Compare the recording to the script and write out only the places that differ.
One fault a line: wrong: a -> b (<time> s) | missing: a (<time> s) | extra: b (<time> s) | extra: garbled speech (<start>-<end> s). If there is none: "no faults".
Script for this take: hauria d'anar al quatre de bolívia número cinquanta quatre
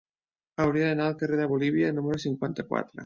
wrong: quatre -> carrer (1.2 s)